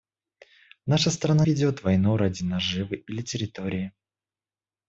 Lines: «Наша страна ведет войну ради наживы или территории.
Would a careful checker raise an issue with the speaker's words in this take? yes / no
no